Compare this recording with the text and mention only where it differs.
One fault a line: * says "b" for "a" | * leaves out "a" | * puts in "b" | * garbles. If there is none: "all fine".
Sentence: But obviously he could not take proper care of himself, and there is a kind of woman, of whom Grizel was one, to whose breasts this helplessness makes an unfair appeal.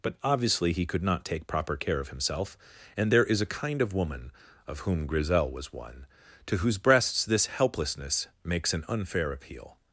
all fine